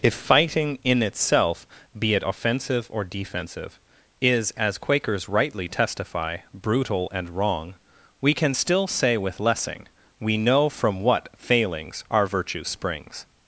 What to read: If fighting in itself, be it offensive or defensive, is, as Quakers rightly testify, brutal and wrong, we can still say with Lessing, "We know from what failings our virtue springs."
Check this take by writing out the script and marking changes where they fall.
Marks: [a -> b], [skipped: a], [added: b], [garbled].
If fighting in itself, be it offensive or defensive, is, as Quakers rightly testify, brutal and wrong, we can still say with Lessing, "We know from what failings our virtue springs."